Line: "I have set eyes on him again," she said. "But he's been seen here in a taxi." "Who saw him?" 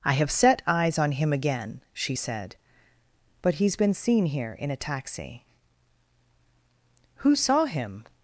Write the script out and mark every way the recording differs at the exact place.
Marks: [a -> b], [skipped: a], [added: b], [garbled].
"I have set eyes on him again," she said. "But he's been seen here in a taxi." "Who saw him?"